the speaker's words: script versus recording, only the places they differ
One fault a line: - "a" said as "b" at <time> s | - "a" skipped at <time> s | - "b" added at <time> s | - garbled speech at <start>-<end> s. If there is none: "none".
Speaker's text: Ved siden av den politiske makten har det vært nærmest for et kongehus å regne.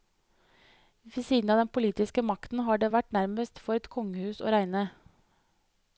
none